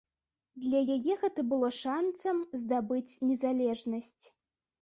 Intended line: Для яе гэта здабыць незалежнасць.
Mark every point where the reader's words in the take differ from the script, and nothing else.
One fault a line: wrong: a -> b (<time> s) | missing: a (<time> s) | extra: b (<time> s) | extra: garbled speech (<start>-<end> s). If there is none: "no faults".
extra: было шанцам (1.5 s)